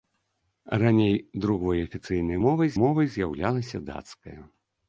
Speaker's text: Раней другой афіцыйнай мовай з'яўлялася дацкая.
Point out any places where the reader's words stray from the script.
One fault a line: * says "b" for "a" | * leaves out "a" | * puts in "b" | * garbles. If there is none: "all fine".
* puts in "мовай"